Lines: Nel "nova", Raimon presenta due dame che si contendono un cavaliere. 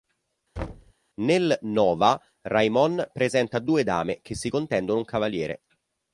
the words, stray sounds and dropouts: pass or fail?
fail